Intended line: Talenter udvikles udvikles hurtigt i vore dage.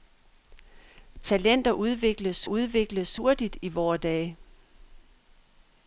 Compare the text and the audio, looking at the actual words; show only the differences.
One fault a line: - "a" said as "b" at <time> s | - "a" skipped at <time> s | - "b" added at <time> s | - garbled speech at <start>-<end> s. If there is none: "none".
none